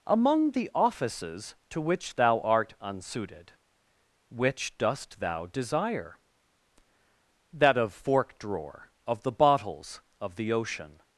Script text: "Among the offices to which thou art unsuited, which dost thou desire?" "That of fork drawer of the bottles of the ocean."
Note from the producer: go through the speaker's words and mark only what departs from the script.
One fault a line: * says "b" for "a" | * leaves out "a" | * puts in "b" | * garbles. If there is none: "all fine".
all fine